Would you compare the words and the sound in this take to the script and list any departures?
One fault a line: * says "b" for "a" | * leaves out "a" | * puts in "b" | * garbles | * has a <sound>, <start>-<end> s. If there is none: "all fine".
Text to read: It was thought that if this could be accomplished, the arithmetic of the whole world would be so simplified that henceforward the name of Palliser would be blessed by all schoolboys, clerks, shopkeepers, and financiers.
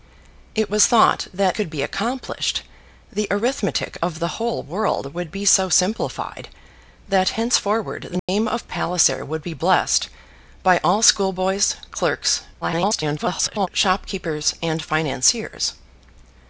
* leaves out "if this"
* has a dropout, 8.2-8.3 s
* garbles